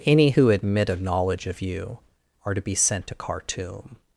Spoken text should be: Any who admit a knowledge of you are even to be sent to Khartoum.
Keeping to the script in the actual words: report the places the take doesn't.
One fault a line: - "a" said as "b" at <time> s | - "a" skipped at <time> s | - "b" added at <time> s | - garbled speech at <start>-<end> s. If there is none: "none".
- "even" skipped at 2.5 s